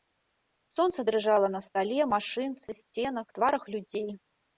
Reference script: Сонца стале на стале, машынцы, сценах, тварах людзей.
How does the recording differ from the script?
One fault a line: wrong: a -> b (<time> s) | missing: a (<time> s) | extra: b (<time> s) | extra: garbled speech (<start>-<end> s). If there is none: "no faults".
wrong: стале -> дрыжала (1.1 s)